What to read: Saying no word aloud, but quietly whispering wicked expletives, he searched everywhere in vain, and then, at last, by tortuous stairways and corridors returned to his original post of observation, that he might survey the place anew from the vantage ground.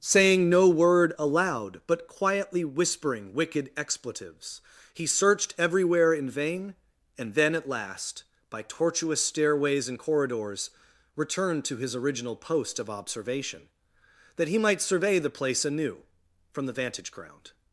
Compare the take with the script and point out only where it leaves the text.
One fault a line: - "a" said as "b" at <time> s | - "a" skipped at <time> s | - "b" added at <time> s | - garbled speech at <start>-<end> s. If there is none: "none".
none